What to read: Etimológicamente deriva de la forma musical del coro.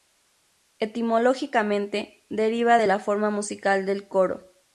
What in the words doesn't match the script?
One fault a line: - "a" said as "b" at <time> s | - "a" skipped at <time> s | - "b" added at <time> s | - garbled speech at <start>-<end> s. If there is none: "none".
none